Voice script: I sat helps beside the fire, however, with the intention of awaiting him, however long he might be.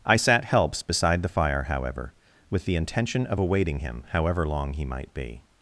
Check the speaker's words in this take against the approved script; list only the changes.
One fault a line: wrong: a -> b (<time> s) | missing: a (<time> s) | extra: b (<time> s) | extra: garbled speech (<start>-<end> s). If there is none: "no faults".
no faults